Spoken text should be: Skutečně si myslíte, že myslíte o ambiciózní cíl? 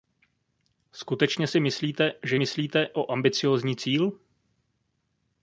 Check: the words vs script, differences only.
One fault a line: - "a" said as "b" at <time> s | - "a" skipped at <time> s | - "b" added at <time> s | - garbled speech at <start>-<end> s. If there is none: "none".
none